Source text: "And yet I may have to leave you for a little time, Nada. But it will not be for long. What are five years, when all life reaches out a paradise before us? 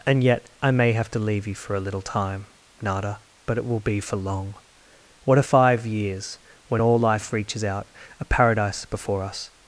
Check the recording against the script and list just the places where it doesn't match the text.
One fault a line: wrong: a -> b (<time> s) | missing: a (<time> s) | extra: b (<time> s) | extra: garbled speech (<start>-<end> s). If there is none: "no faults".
missing: not (3.8 s)